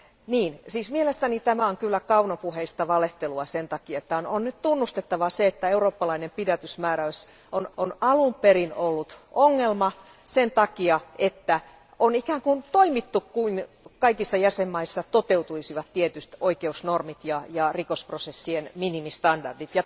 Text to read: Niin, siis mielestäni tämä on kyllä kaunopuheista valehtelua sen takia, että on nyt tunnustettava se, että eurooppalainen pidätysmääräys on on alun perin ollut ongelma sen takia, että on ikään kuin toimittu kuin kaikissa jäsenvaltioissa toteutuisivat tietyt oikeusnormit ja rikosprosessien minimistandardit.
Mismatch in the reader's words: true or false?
false